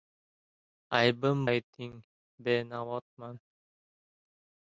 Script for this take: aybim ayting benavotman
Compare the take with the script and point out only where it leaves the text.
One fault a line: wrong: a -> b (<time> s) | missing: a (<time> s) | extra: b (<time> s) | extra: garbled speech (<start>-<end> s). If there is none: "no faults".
no faults